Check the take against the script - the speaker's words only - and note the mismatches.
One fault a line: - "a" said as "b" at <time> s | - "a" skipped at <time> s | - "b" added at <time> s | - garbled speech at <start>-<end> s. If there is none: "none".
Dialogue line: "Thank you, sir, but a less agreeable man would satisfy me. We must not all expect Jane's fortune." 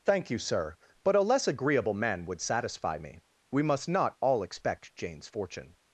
none